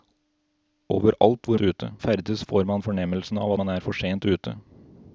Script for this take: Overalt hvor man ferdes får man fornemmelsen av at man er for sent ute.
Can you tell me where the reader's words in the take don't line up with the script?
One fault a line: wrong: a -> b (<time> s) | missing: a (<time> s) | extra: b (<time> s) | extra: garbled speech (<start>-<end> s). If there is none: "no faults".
wrong: man -> ute (1.6 s)
missing: at (3.5 s)